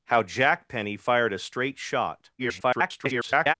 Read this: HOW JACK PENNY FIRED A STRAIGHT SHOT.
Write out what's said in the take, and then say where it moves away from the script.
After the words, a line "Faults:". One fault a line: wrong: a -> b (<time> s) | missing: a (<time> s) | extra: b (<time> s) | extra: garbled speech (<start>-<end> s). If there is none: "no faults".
HOW JACK PENNY FIRED A STRAIGHT SHOT. [garbled]
Faults:
extra: garbled speech (2.4-3.5 s)